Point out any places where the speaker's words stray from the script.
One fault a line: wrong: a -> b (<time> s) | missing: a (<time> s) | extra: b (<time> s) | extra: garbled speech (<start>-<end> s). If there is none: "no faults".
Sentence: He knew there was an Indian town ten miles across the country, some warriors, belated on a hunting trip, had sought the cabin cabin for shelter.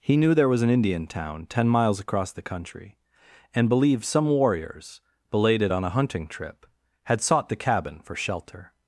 extra: and believed (3.5 s)
missing: cabin (8.0 s)